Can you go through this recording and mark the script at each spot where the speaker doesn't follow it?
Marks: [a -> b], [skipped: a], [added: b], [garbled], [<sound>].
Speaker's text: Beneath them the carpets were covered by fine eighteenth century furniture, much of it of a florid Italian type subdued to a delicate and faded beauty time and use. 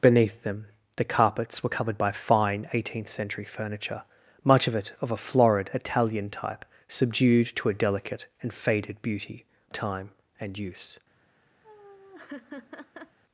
Beneath them the carpets were covered by fine eighteenth century furniture, much of it of a florid Italian type subdued to a delicate and faded beauty time and use. [laugh]